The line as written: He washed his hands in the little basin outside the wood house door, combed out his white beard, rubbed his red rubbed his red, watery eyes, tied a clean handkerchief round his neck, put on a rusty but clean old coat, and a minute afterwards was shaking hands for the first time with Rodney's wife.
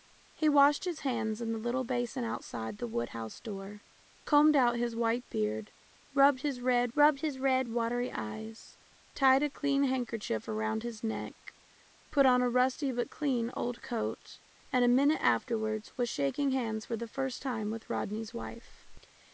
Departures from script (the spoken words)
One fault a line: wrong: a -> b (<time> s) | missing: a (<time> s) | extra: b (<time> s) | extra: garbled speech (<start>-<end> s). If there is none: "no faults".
no faults